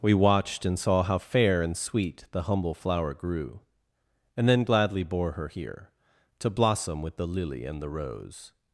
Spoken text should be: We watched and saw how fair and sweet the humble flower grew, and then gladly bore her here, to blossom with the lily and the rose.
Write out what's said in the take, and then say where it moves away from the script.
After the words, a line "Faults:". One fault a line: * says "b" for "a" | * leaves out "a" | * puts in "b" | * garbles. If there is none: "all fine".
We watched and saw how fair and sweet the humble flower grew, and then gladly bore her here, to blossom with the lily and the rose.
Faults:
all fine